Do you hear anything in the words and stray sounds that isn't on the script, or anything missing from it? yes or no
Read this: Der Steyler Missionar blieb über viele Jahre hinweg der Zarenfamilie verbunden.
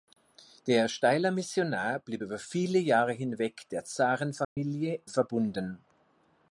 yes